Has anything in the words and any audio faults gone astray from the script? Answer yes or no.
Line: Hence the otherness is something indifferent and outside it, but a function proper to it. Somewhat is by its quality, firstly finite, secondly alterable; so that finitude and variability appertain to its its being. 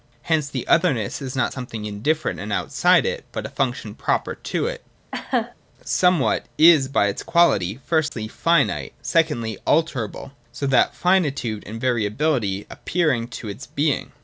yes